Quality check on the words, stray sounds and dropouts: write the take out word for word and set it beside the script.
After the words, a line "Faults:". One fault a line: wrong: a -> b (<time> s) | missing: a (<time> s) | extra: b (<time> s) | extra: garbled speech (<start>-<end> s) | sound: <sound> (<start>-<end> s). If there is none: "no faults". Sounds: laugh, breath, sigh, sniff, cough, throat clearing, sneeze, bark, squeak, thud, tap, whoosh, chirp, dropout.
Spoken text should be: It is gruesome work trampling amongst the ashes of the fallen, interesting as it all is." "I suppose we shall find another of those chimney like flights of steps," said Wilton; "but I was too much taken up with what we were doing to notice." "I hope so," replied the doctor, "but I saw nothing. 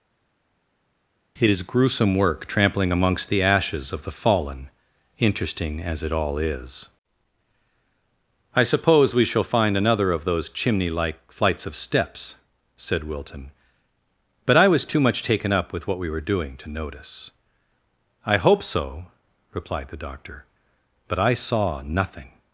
It is gruesome work trampling amongst the ashes of the fallen, interesting as it all is." "I suppose we shall find another of those chimney like flights of steps," said Wilton; "but I was too much taken up with what we were doing to notice." "I hope so," replied the doctor, "but I saw nothing.
Faults:
no faults